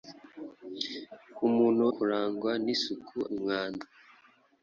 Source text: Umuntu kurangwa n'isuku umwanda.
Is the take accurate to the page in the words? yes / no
yes